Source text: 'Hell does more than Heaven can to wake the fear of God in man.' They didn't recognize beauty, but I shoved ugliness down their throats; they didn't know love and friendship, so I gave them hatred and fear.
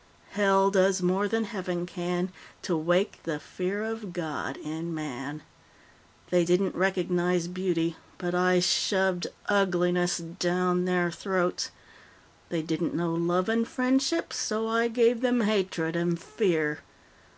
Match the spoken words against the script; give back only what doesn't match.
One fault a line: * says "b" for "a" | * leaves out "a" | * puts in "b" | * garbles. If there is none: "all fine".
all fine